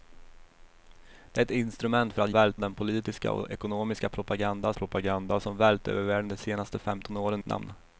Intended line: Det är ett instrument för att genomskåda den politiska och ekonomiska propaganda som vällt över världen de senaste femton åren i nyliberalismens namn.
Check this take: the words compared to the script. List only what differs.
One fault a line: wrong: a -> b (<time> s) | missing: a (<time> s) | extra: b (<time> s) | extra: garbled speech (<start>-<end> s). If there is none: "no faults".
wrong: genomskåda -> vällt (2.3 s)
extra: propaganda (4.7 s)
missing: i nyliberalismens (7.4 s)